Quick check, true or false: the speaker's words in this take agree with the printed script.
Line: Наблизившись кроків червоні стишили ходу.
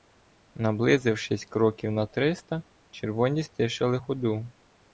false